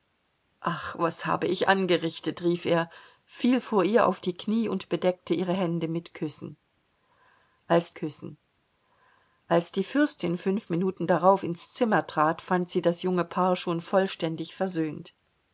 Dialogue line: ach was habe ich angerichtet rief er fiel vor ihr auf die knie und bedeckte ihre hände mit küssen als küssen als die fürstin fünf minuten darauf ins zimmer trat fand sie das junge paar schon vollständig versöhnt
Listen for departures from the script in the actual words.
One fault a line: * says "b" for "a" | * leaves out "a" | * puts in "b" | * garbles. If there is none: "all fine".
all fine